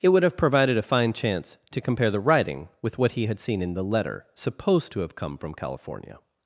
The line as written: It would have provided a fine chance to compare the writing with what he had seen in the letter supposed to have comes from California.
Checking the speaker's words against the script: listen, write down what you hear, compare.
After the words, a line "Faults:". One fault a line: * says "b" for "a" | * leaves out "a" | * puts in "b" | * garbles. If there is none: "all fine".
It would have provided a fine chance to compare the writing with what he had seen in the letter supposed to have come from California.
Faults:
* says "come" for "comes"